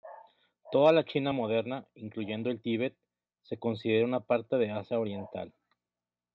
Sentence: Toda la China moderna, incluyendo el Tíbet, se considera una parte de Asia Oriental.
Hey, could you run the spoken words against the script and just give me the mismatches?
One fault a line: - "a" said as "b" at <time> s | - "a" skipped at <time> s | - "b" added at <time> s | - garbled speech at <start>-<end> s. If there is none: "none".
none